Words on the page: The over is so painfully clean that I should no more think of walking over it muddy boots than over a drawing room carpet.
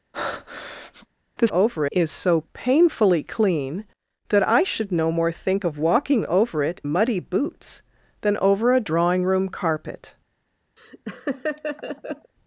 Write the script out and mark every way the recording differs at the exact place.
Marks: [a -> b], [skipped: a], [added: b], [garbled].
The over is so painfully clean that I should no more think of walking over it muddy boots than over a drawing room carpet.